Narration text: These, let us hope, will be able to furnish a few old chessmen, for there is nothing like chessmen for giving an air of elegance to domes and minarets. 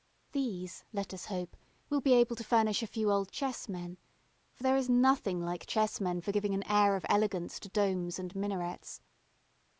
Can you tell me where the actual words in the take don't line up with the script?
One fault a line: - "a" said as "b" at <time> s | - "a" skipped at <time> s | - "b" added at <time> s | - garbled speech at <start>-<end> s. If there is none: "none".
none